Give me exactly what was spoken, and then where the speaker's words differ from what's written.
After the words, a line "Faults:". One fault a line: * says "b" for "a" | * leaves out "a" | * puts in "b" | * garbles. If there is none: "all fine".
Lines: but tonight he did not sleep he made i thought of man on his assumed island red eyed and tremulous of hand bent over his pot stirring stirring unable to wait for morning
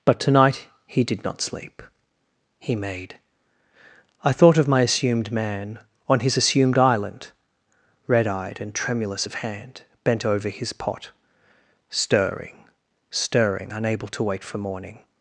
but tonight he did not sleep he made i thought of my assumed man on his assumed island red eyed and tremulous of hand bent over his pot stirring stirring unable to wait for morning
Faults:
* puts in "my assumed"